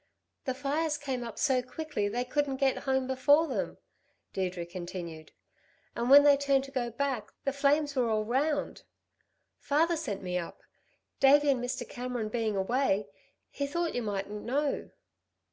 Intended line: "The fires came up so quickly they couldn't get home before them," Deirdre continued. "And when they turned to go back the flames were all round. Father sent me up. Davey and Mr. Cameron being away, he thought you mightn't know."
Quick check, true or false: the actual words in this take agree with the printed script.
true